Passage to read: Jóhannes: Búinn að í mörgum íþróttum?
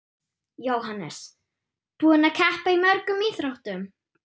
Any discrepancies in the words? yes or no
yes